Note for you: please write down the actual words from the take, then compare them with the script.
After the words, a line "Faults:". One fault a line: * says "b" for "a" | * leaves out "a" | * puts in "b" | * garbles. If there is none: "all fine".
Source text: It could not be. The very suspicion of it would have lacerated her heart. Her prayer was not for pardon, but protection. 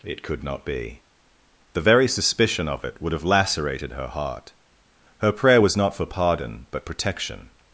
It could not be. The very suspicion of it would have lacerated her heart. Her prayer was not for pardon, but protection.
Faults:
all fine